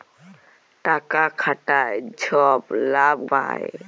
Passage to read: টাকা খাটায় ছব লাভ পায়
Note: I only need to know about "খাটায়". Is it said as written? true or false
true